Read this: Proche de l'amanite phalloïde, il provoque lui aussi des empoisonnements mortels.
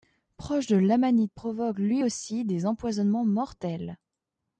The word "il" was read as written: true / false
false